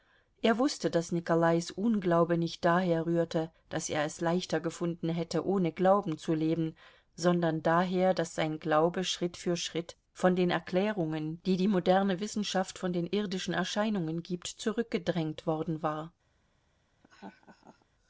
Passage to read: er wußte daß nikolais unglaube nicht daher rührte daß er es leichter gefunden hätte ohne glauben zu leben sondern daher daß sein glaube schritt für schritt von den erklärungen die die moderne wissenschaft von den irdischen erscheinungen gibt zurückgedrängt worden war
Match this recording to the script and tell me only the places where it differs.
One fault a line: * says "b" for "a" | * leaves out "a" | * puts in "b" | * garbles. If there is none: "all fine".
all fine